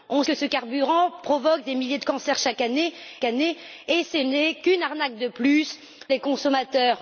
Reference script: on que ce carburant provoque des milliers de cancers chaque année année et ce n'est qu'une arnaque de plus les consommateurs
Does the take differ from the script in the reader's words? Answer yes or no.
no